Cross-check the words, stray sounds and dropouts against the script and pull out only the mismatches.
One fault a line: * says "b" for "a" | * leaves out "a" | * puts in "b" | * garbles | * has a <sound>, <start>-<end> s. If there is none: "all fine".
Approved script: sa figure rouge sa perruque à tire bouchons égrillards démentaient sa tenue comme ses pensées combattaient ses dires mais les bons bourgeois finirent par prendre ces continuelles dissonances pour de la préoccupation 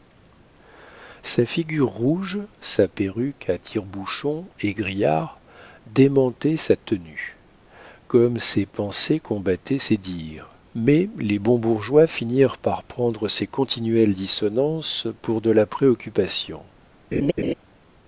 * has a laugh, 17.1-17.5 s